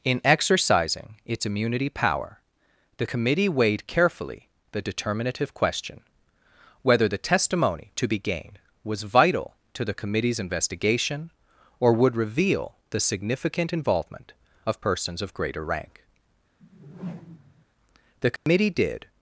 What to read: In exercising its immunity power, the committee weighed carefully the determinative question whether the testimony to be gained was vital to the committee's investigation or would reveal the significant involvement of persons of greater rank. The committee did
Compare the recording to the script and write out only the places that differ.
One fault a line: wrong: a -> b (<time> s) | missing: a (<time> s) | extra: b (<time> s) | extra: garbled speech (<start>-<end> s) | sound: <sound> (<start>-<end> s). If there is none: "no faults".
sound: whoosh (16.6-17.7 s)
sound: dropout (18.4-18.5 s)